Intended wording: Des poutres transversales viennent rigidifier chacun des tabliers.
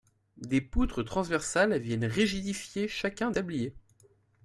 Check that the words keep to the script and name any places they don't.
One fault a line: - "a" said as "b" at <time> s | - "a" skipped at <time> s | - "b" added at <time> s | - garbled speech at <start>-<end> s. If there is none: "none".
- "des" skipped at 3.3 s